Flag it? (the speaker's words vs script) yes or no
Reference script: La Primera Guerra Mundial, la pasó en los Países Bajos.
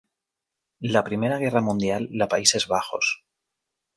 yes